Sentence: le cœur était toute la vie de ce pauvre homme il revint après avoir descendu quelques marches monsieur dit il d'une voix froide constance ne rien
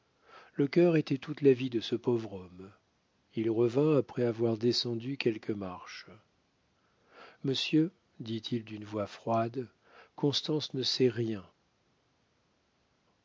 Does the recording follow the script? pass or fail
fail